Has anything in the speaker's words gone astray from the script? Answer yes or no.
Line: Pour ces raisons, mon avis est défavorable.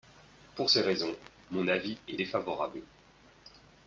no